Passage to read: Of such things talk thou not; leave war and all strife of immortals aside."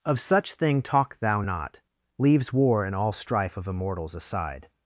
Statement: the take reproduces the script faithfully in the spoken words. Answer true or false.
false